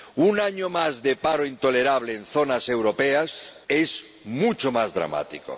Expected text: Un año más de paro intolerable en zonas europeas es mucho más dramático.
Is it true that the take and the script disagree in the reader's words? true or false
false